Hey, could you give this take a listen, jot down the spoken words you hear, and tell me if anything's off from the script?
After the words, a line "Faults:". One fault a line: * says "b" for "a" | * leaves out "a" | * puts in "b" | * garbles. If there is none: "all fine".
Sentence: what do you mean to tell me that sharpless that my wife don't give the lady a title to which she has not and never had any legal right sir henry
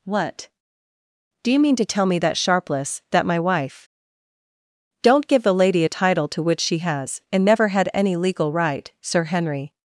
what do you mean to tell me that sharpless that my wife don't give the lady a title to which she has and never had any legal right sir henry
Faults:
* leaves out "not"